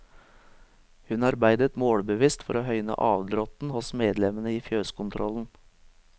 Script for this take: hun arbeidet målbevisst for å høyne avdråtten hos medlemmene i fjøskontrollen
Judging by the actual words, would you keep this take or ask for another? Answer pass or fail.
pass